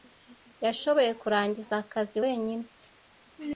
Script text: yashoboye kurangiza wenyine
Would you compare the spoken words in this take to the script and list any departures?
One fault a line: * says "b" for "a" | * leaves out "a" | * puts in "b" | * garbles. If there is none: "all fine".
* puts in "akazi"